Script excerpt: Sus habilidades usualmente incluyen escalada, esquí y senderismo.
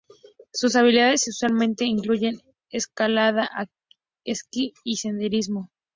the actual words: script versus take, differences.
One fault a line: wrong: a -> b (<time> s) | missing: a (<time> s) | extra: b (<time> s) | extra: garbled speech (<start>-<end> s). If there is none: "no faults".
no faults